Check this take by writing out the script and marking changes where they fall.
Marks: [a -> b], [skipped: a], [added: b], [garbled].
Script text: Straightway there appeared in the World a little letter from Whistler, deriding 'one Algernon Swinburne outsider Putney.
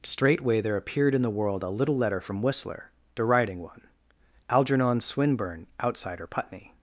Straightway there appeared in the World a little letter from Whistler, deriding 'one Algernon Swinburne outsider Putney.